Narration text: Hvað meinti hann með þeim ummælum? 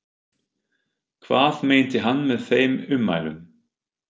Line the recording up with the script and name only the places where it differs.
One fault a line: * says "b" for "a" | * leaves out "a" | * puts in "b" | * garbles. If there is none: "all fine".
all fine